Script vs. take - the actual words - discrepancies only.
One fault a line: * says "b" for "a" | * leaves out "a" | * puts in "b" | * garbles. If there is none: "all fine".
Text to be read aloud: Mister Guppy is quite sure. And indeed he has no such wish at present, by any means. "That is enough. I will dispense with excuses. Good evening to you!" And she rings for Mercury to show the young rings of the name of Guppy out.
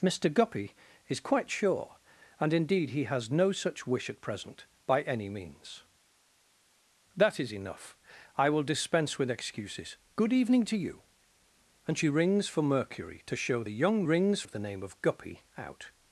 all fine